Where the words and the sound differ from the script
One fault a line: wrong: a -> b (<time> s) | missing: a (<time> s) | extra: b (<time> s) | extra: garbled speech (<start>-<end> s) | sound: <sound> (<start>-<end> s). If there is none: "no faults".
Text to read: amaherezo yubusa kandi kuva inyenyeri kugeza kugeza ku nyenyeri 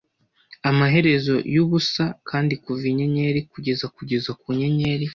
no faults